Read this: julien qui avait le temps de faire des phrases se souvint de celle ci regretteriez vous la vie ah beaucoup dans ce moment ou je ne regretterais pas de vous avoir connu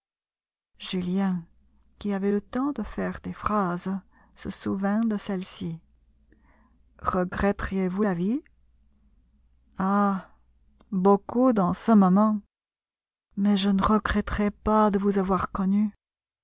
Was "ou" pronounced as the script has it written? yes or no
no